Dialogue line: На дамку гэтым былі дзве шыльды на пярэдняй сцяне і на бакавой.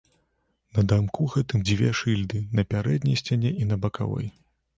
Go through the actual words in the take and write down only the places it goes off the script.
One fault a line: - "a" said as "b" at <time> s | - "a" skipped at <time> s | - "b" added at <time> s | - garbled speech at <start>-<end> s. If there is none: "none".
- "былі" skipped at 1.6 s